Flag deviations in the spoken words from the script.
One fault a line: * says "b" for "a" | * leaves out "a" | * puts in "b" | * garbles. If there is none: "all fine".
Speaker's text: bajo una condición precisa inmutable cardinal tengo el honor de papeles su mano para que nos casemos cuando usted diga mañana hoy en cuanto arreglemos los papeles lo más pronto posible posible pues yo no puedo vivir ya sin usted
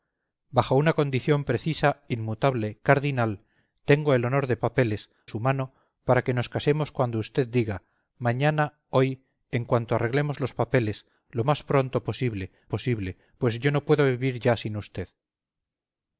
all fine